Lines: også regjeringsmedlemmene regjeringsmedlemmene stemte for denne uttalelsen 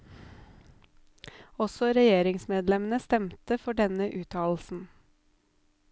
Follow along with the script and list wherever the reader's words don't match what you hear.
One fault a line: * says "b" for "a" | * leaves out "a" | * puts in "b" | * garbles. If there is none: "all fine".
* leaves out "regjeringsmedlemmene"